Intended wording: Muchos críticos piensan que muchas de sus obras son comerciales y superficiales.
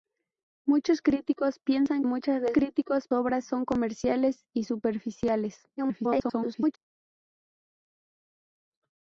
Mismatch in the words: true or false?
true